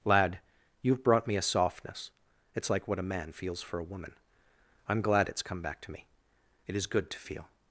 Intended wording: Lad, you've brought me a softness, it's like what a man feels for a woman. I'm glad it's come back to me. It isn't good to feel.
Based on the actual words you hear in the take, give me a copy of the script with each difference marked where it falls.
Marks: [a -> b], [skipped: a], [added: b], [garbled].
Lad, you've brought me a softness, it's like what a man feels for a woman. I'm glad it's come back to me. It [isn't -> is] good to feel.